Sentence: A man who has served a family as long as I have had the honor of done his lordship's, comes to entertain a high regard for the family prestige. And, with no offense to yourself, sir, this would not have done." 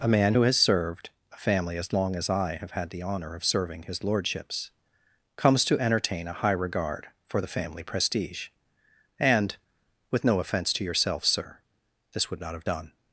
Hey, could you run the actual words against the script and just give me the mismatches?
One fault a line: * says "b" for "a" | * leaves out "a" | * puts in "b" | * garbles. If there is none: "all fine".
* says "serving" for "done"